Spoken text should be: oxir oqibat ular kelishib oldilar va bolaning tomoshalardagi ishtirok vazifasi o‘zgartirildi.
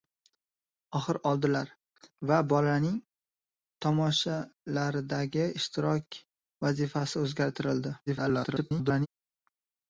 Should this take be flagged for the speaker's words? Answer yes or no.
yes